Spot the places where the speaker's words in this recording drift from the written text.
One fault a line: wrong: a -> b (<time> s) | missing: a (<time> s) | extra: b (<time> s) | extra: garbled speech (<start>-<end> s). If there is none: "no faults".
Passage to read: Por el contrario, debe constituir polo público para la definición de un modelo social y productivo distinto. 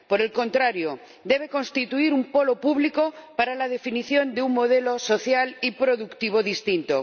extra: un (2.1 s)